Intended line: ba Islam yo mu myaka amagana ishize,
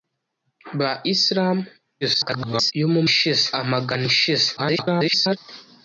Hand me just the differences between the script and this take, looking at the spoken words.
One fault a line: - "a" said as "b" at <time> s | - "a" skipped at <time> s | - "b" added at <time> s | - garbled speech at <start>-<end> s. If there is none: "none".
- garbled speech at 2.0-2.7 s
- "myaka" said as "ishize" at 3.1 s
- garbled speech at 4.6-5.4 s